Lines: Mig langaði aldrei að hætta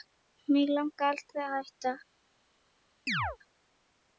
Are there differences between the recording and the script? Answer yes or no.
no